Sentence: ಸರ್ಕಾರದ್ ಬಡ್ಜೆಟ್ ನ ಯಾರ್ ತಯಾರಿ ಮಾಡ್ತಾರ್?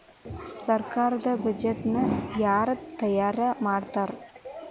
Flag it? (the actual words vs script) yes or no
no